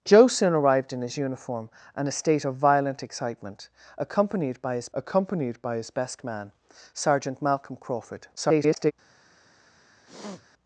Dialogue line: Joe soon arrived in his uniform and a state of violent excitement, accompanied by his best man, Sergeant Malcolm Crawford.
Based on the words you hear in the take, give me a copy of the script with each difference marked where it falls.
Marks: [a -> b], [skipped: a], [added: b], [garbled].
Joe soon arrived in his uniform and a state of violent excitement, accompanied by his [added: accompanied by his] best man, Sergeant Malcolm Crawford. [garbled]